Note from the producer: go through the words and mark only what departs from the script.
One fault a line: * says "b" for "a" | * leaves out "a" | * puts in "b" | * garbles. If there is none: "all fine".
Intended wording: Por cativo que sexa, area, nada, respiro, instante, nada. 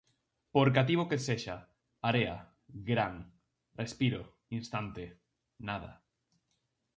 * says "gran" for "nada"